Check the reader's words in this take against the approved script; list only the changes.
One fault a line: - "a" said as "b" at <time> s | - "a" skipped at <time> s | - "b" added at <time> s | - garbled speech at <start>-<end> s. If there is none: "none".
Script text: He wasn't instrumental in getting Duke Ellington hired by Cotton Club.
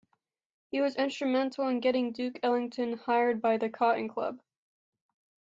- "wasn't" said as "was" at 0.8 s
- "the" added at 3.6 s